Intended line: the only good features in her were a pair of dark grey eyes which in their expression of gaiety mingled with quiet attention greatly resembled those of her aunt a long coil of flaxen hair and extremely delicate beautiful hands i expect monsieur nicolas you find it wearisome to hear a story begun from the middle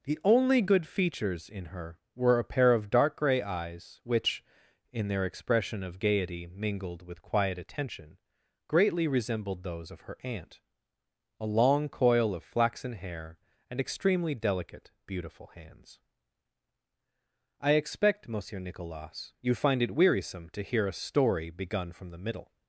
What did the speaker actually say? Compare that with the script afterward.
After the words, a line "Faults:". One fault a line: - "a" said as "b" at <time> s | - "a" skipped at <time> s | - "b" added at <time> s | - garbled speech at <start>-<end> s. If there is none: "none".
the only good features in her were a pair of dark grey eyes which in their expression of gaiety mingled with quiet attention greatly resembled those of her aunt a long coil of flaxen hair and extremely delicate beautiful hands i expect monsieur nicolas you find it wearisome to hear a story begun from the middle
Faults:
none